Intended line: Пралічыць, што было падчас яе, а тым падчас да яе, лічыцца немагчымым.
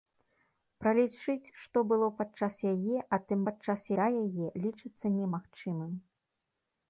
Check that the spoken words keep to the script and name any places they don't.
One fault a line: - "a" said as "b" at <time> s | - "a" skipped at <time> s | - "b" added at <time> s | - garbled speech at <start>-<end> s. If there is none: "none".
none